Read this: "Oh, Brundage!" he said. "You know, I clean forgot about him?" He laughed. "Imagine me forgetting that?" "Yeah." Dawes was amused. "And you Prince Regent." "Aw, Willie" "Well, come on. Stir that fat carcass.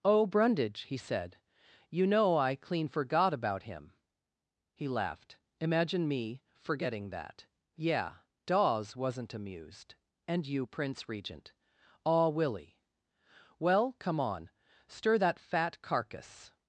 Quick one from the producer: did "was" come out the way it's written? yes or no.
no